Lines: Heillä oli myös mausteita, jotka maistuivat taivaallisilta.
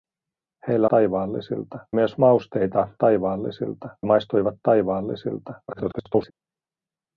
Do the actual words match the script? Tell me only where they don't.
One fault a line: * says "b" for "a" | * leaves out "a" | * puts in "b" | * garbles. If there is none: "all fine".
* says "taivaallisilta" for "oli"
* says "taivaallisilta" for "jotka"
* garbles